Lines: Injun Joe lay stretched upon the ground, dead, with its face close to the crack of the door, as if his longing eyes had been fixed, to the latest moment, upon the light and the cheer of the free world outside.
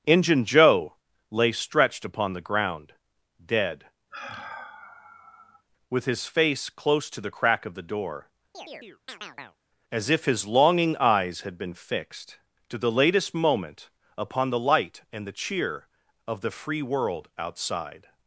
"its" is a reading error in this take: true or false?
true